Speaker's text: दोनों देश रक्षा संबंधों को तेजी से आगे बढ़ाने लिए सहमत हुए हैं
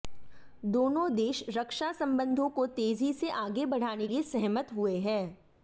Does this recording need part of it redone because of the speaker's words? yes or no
no